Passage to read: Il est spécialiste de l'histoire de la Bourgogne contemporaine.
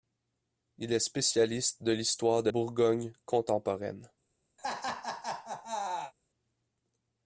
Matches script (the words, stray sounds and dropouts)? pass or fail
fail